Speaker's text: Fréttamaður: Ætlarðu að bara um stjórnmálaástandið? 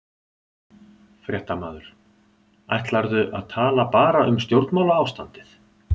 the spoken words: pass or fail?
fail